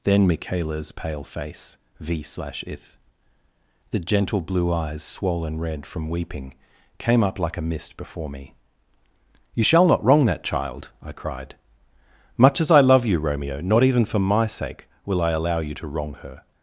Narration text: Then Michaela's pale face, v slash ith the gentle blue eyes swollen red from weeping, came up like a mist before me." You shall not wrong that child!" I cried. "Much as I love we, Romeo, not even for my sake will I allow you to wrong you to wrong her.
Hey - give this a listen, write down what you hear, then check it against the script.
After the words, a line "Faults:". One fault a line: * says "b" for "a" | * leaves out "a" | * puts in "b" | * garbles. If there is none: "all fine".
Then Michaela's pale face, v slash ith the gentle blue eyes swollen red from weeping, came up like a mist before me." You shall not wrong that child!" I cried. "Much as I love you, Romeo, not even for my sake will I allow you to wrong her.
Faults:
* says "you" for "we"
* leaves out "you to wrong"